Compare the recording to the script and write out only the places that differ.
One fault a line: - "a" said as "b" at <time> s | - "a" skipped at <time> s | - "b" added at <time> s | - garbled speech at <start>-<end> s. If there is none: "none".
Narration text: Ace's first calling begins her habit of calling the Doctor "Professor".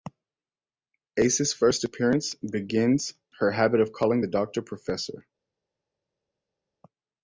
- "calling" said as "appearance" at 1.8 s